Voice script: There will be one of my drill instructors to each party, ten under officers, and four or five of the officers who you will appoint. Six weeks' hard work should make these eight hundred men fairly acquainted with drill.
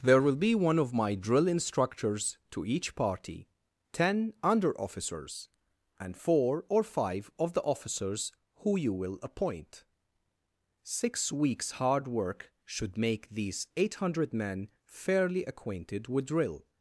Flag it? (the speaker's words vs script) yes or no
no